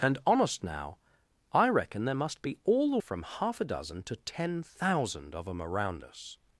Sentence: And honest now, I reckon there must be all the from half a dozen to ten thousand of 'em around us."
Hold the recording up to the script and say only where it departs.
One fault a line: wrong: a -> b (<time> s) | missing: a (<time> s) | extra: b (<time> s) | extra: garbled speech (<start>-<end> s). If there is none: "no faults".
no faults